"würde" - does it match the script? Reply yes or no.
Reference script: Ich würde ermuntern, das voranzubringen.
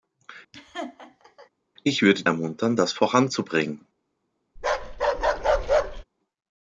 yes